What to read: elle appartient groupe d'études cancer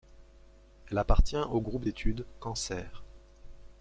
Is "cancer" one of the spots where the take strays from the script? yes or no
no